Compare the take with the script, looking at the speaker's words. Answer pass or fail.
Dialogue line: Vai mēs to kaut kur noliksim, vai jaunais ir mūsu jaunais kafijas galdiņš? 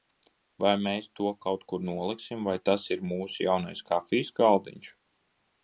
fail